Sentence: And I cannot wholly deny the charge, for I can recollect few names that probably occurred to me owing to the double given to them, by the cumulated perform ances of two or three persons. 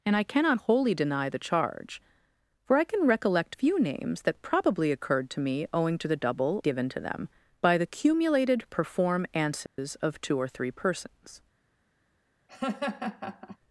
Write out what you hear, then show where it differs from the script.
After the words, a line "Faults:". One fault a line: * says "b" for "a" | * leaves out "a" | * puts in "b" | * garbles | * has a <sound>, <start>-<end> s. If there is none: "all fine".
And I cannot wholly deny the charge, for I can recollect few names that probably occurred to me owing to the double given to them, by the cumulated perform ances of two or three persons.
Faults:
* has a dropout, 9.7-9.8 s
* has a laugh, 12.5-13.6 s